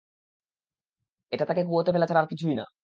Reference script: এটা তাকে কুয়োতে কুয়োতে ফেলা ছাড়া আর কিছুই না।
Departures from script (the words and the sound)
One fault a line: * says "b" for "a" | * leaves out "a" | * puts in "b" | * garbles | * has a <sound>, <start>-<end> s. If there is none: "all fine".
* leaves out "কুয়োতে"